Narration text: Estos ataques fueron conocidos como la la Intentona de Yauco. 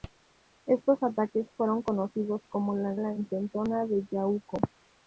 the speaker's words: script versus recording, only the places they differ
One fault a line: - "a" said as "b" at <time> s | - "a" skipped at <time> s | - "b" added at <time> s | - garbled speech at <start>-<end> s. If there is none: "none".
none